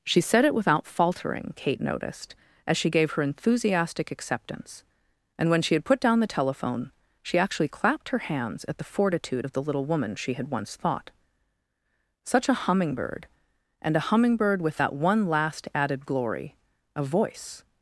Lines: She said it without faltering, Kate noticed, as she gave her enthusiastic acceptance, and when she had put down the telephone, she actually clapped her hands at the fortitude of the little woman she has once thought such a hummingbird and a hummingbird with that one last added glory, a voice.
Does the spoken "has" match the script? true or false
false